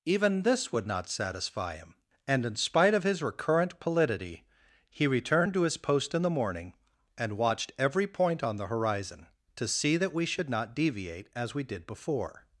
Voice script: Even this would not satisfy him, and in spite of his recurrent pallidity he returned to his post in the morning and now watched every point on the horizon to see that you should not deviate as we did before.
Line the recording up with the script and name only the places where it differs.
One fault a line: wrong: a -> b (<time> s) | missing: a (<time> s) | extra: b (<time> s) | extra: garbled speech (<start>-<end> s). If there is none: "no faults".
missing: now (7.4 s)
wrong: you -> we (10.1 s)